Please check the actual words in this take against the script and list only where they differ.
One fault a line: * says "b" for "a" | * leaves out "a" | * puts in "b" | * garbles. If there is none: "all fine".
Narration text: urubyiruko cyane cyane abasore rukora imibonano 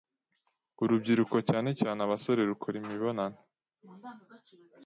all fine